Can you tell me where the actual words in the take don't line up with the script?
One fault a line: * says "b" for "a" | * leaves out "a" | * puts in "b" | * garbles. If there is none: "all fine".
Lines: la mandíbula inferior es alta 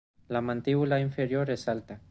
all fine